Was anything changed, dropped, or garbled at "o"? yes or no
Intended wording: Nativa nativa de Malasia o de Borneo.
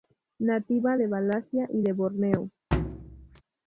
yes